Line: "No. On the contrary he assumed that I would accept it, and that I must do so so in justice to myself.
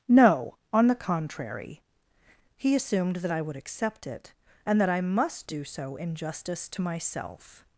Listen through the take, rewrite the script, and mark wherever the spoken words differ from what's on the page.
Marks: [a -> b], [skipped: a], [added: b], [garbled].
"No. On the contrary he assumed that I would accept it, and that I must do so [skipped: so] in justice to myself.